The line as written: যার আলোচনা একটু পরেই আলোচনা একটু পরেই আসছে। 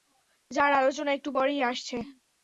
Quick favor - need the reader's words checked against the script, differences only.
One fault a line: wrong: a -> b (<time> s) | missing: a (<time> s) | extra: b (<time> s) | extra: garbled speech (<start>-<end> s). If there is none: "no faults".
missing: আলোচনা একটু পরেই (1.6 s)